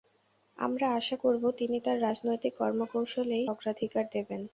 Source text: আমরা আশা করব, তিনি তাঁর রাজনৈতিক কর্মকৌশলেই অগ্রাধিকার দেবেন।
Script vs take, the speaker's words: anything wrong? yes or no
no